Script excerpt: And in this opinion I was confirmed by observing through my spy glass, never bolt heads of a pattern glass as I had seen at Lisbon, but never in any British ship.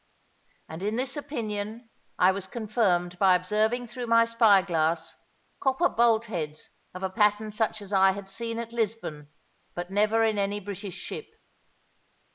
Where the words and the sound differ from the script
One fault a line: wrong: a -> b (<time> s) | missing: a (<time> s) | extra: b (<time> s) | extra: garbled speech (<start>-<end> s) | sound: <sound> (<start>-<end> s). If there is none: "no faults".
wrong: never -> copper (5.6 s)
wrong: glass -> such (7.5 s)